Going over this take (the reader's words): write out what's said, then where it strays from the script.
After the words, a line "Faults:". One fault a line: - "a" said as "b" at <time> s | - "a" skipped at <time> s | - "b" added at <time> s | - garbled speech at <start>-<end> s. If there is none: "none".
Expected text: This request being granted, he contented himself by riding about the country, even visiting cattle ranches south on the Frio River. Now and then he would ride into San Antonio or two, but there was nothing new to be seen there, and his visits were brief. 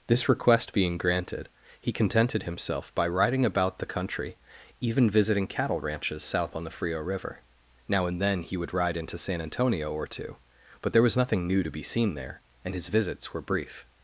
This request being granted, he contented himself by riding about the country, even visiting cattle ranches south on the Frio River. Now and then he would ride into San Antonio or two, but there was nothing new to be seen there, and his visits were brief.
Faults:
none